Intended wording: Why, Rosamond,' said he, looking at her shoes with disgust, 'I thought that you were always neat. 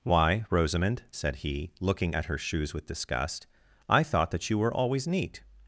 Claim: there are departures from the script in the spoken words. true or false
false